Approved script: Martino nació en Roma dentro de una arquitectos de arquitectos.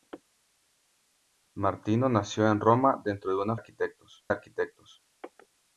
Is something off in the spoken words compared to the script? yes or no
no